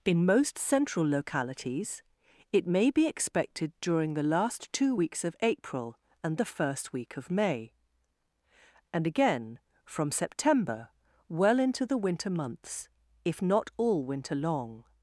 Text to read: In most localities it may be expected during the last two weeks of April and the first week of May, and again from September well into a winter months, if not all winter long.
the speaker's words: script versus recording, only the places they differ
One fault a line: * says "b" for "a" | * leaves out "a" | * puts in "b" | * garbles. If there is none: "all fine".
* puts in "central"
* says "the" for "a"